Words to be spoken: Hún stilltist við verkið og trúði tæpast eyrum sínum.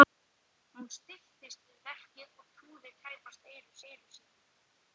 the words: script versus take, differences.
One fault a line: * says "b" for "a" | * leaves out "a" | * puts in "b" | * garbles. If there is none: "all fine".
* puts in "eyrum"